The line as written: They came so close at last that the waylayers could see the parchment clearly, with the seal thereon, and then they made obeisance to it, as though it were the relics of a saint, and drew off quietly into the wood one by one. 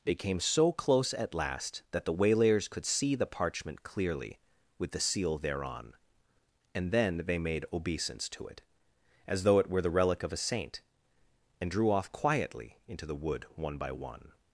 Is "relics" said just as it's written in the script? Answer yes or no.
no